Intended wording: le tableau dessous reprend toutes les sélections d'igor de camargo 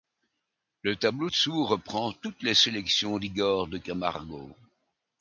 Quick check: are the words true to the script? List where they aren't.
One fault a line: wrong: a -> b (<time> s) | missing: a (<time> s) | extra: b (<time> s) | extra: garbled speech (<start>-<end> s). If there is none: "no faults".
no faults